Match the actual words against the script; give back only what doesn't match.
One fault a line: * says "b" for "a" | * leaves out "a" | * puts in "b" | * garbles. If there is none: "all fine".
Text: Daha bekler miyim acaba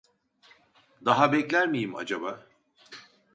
all fine